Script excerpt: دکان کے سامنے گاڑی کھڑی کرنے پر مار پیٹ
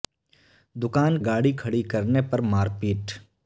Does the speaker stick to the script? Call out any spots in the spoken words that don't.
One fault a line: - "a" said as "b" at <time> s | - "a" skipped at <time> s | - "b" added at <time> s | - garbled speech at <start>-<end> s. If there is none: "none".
- "کے سامنے" skipped at 1.2 s